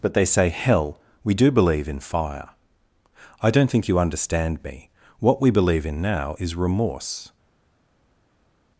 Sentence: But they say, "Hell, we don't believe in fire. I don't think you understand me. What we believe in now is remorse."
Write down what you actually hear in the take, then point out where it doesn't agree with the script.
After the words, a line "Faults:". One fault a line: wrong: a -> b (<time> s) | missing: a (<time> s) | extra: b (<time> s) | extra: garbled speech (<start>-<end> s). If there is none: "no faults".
But they say, "Hell, we do believe in fire. I don't think you understand me. What we believe in now is remorse."
Faults:
wrong: don't -> do (1.3 s)